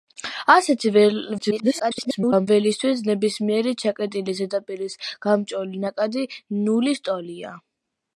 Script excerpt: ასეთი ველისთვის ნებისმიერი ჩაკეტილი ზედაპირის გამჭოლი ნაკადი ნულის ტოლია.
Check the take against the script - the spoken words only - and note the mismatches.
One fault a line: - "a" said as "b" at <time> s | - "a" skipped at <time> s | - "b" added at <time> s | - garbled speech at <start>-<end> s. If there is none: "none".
- garbled speech at 1.4-2.5 s